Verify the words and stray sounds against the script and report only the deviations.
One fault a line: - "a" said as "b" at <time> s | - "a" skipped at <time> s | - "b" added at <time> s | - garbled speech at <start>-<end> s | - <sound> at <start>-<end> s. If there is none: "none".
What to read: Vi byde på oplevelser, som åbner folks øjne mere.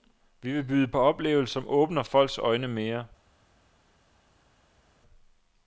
- "vil" added at 0.5 s